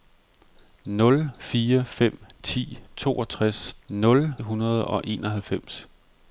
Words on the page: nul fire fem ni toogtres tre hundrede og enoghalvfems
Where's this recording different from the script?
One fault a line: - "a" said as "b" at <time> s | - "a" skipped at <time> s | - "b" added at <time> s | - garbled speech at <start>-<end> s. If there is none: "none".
- "tre" said as "nul" at 3.9 s